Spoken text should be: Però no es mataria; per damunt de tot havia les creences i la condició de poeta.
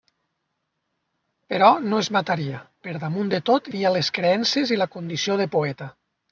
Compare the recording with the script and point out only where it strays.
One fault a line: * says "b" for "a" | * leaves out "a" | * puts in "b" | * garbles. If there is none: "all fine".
all fine